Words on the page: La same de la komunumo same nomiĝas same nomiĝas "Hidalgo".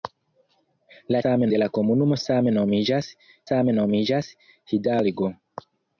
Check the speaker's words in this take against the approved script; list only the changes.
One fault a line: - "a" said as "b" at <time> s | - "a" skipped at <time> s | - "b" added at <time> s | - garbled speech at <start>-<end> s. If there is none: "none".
none